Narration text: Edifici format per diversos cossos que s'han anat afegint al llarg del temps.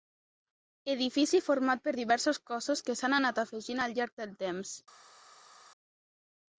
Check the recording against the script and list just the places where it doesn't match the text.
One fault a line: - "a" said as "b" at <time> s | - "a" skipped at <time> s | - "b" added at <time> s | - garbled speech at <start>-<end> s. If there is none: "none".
none